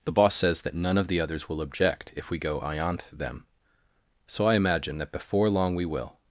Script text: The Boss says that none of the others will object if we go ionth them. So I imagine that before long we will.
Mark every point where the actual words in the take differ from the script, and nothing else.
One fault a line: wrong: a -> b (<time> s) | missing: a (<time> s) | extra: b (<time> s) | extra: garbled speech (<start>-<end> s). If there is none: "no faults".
no faults